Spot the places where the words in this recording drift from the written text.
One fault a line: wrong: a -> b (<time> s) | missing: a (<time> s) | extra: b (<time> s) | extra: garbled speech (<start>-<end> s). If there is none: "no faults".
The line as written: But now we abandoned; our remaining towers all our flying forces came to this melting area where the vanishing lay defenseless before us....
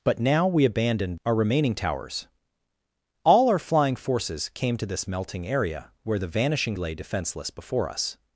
no faults